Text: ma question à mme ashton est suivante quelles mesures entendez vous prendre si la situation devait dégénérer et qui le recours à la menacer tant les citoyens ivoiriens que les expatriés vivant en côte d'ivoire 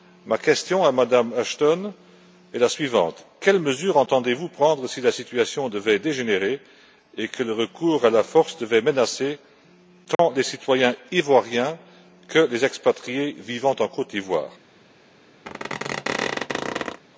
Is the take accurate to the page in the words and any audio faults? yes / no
no